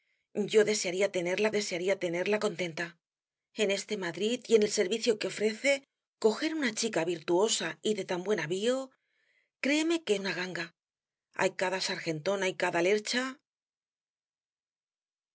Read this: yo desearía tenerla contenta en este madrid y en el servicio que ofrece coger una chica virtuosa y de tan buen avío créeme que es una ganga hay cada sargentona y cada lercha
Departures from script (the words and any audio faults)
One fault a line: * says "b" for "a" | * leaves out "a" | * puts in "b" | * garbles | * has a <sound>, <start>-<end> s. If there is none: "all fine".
* puts in "desearía tenerla"
* leaves out "es"